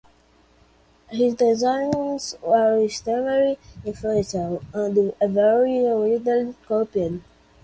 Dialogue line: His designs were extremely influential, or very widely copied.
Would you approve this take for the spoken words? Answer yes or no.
no